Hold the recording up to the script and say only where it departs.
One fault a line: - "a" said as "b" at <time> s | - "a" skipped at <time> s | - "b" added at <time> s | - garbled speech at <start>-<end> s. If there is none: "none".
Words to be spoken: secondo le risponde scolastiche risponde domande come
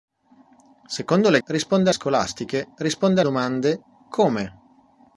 none